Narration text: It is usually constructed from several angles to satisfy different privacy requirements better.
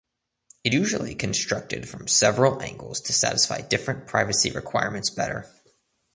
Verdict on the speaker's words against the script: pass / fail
fail